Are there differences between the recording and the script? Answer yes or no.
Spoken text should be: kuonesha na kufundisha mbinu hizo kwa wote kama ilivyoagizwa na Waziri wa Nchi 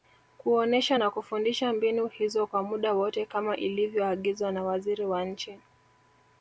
yes